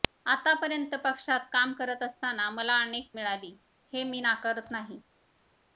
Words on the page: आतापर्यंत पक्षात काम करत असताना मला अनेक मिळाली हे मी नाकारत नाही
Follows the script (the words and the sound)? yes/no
yes